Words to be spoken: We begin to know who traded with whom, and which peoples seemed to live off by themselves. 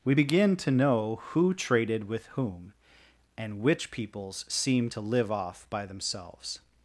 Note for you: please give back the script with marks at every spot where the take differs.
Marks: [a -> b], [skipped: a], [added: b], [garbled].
We begin to know who traded with whom, and which peoples seemed to live off by themselves.